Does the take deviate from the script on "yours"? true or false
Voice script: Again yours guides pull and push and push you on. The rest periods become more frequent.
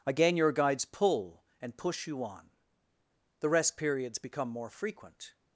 true